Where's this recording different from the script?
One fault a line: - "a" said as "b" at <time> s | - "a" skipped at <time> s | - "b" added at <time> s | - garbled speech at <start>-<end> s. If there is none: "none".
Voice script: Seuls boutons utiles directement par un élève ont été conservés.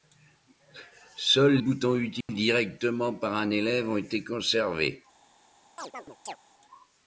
none